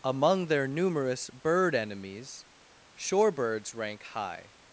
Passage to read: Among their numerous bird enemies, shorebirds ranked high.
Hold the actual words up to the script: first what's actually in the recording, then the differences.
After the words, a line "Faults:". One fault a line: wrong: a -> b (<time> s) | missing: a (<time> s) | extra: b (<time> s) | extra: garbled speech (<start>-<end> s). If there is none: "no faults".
Among their numerous bird enemies, shorebirds rank high.
Faults:
wrong: ranked -> rank (3.7 s)